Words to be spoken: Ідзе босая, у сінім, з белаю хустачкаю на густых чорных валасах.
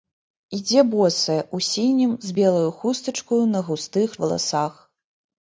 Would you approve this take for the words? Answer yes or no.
no